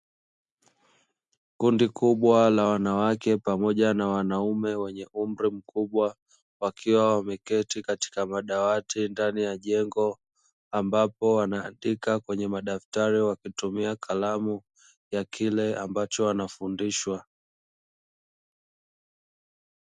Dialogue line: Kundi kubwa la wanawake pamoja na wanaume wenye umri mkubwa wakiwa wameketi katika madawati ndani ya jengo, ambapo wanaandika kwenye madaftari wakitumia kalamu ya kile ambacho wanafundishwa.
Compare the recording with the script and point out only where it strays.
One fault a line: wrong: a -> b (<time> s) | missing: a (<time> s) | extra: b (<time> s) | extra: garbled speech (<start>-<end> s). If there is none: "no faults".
no faults